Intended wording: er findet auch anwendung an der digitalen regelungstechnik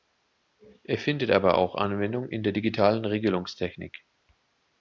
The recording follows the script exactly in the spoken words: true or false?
false